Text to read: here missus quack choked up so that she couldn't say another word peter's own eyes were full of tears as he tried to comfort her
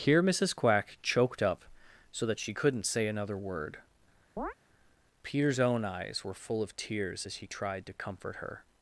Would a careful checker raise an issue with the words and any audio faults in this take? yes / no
yes